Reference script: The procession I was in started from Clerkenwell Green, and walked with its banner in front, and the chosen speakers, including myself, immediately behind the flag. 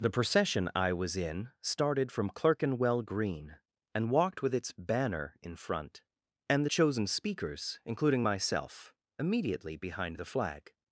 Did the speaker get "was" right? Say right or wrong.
right